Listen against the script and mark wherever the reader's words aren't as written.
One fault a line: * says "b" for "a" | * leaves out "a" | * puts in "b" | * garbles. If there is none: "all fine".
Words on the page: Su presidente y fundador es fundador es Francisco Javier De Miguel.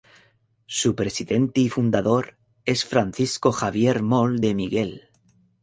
* leaves out "fundador es"
* puts in "Moll"